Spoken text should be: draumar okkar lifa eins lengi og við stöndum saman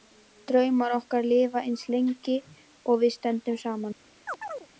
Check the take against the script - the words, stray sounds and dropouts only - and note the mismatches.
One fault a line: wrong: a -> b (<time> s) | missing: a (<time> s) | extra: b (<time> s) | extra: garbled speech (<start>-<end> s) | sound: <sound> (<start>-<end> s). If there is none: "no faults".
sound: chirp (4.3-4.7 s)